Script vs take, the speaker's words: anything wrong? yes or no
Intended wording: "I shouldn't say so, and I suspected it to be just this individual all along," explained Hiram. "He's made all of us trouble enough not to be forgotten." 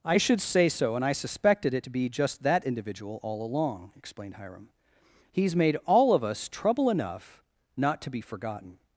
yes